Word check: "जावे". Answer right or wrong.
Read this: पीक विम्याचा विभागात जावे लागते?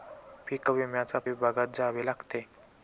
right